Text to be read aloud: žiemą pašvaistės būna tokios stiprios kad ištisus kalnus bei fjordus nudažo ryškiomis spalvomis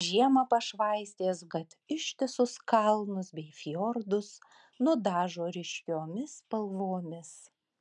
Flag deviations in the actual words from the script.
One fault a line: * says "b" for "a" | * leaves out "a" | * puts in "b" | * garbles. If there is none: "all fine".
* leaves out "būna tokios stiprios"